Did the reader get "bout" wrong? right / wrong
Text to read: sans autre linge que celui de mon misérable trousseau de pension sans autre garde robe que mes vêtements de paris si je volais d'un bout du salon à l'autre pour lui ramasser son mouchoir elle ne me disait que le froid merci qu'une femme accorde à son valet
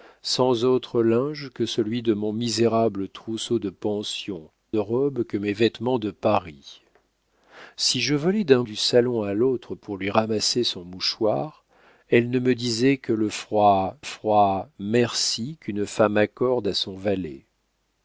wrong